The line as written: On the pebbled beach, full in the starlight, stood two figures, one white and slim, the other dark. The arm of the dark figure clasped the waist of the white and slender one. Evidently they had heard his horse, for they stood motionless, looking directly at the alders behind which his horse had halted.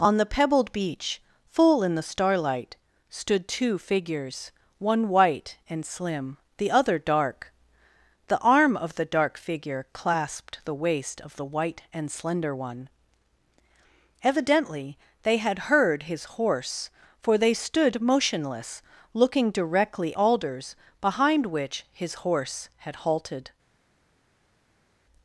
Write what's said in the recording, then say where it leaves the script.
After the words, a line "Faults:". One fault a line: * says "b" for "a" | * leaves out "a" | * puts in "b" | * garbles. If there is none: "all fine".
On the pebbled beach, full in the starlight, stood two figures, one white and slim, the other dark. The arm of the dark figure clasped the waist of the white and slender one. Evidently they had heard his horse, for they stood motionless, looking directly alders behind which his horse had halted.
Faults:
* leaves out "at the"